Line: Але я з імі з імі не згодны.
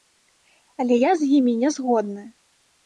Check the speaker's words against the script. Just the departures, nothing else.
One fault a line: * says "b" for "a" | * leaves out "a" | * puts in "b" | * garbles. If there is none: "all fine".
* leaves out "з імі"